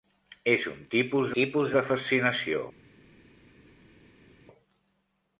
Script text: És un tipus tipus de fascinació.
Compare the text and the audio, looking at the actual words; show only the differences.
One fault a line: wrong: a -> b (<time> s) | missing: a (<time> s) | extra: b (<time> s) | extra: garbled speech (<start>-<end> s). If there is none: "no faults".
no faults